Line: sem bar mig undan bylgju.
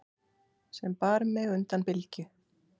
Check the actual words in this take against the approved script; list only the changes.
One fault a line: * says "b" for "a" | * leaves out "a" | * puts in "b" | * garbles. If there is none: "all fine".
all fine